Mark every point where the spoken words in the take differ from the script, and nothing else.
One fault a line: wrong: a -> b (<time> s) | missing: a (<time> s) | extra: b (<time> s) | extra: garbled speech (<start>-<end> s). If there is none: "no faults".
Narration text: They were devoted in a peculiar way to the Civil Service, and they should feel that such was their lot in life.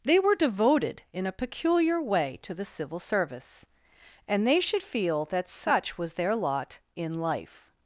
no faults